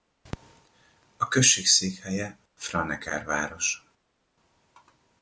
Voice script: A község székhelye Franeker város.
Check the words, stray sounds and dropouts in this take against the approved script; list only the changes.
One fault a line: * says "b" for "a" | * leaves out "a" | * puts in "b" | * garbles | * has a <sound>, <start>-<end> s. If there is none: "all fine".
all fine